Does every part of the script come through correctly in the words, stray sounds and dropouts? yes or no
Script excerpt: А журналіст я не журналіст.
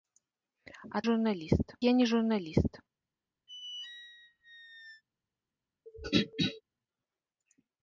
no